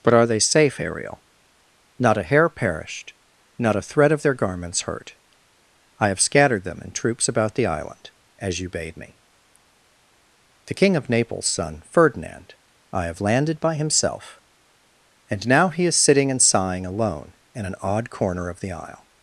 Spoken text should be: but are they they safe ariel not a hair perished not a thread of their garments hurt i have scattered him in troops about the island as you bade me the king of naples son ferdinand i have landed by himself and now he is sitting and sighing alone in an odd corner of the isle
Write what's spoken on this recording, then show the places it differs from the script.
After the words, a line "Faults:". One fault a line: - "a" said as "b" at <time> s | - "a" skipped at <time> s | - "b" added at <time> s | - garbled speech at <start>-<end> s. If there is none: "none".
but are they safe ariel not a hair perished not a thread of their garments hurt i have scattered them in troops about the island as you bade me the king of naples son ferdinand i have landed by himself and now he is sitting and sighing alone in an odd corner of the isle
Faults:
- "they" skipped at 0.4 s
- "him" said as "them" at 6.6 s